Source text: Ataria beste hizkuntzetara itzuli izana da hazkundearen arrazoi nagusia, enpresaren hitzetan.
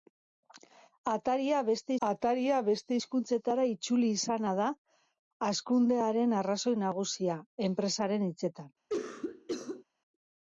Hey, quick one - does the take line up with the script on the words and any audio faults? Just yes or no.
no